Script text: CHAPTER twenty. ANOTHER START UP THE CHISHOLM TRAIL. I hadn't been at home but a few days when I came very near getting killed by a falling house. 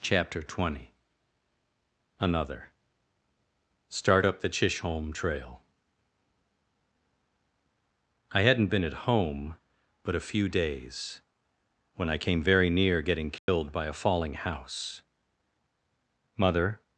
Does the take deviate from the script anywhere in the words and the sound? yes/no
yes